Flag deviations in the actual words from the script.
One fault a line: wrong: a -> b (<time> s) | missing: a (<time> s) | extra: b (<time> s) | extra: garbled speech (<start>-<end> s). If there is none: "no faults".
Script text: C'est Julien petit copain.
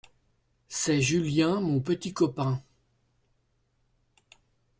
extra: mon (1.6 s)